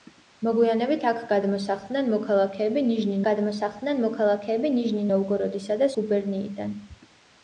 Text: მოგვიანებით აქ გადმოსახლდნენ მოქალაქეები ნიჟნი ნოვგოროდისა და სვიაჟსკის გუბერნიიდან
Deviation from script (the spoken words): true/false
true